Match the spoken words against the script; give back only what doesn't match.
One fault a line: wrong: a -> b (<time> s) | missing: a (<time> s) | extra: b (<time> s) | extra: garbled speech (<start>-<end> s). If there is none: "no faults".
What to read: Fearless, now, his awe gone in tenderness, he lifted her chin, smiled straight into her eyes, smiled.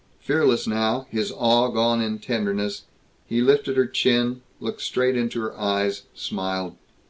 wrong: smiled -> looked (4.6 s)